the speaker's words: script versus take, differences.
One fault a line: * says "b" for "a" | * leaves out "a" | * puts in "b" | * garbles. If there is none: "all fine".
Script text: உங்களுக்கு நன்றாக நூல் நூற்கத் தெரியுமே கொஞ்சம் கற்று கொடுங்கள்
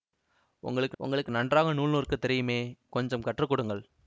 * puts in "உங்களுக்கு"